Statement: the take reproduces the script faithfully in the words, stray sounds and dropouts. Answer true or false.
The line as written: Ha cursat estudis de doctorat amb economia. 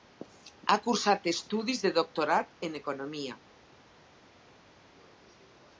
false